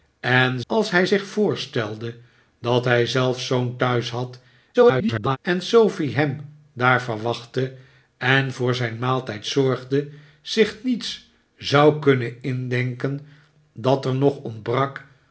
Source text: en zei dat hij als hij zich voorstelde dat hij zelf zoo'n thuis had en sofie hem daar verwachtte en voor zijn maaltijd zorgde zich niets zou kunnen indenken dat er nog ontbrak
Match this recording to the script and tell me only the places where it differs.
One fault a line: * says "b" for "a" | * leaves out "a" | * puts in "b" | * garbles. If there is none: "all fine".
* leaves out "zei dat hij"
* garbles